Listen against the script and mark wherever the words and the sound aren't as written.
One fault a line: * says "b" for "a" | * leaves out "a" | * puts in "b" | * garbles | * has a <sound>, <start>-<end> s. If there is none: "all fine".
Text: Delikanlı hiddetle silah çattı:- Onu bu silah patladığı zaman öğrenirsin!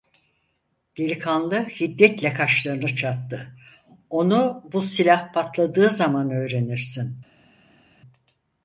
* says "kaşlarını" for "silah"